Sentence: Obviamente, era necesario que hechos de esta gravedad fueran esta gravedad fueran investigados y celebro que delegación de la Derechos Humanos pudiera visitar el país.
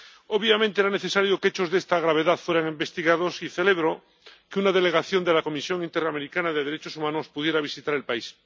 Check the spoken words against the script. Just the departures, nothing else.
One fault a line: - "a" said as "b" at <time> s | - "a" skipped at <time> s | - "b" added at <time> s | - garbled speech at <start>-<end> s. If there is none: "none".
- "esta gravedad fueran" skipped at 2.7 s
- "una" added at 4.6 s
- "Comisión Interamericana de" added at 5.4 s